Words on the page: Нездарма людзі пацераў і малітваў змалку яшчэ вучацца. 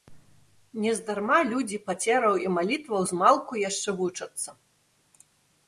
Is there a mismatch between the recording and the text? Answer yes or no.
no